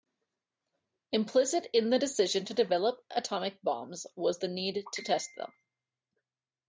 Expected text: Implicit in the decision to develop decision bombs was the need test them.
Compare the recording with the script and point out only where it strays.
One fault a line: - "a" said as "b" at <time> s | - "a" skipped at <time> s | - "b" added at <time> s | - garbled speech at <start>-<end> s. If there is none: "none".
- "decision" said as "atomic" at 3.1 s
- "to" added at 4.9 s